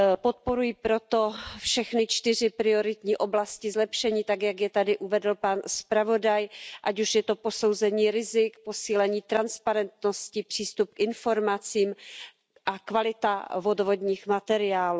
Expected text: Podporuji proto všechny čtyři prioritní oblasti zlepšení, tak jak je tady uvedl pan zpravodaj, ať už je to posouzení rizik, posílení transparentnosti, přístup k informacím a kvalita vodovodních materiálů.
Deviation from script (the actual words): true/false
false